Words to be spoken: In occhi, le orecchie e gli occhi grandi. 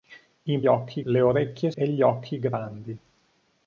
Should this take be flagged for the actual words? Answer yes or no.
no